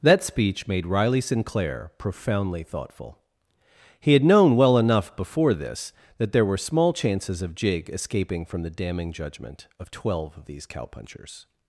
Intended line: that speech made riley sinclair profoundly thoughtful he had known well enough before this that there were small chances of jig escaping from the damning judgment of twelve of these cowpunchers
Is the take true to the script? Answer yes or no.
yes